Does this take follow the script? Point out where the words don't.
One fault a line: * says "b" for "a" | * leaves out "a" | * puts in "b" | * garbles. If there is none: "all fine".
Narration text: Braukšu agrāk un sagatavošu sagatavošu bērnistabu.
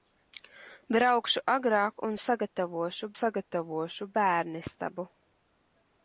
all fine